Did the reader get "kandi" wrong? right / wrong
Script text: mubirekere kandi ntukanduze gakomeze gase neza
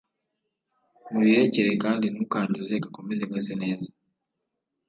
right